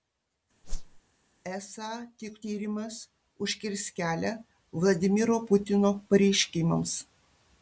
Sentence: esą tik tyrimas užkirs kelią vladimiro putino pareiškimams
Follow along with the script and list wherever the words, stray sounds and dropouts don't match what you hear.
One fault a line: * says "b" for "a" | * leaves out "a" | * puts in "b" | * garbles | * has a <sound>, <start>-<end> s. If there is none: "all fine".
* has a whoosh, 0.6-1.0 s